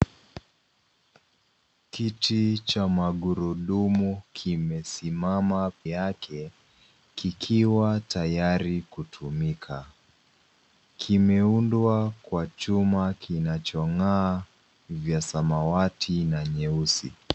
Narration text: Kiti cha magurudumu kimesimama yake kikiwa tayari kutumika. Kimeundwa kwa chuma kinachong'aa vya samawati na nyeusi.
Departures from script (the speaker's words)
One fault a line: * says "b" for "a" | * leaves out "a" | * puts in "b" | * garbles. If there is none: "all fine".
all fine